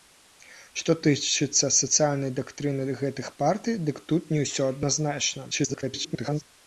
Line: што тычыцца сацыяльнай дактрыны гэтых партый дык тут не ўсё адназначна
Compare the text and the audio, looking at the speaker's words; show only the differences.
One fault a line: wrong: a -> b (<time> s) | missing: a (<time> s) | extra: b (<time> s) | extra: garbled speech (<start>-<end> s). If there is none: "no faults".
extra: garbled speech (5.5-6.4 s)